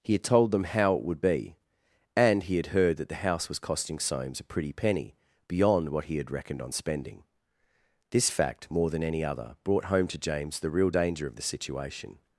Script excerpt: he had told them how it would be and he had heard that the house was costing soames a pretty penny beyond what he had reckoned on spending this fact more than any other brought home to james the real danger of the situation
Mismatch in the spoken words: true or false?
false